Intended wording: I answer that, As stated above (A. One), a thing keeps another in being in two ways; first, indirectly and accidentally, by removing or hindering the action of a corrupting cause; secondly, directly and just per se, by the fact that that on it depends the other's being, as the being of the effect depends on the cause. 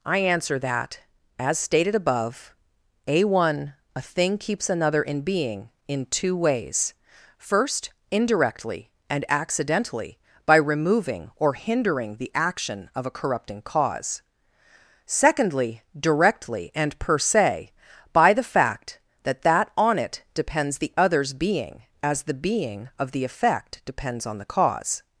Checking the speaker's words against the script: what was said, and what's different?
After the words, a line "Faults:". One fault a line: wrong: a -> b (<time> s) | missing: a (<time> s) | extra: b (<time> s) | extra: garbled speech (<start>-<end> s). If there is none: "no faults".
I answer that, As stated above (A. One), a thing keeps another in being in two ways; first, indirectly and accidentally, by removing or hindering the action of a corrupting cause; secondly, directly and per se, by the fact that that on it depends the other's being, as the being of the effect depends on the cause.
Faults:
missing: just (17.0 s)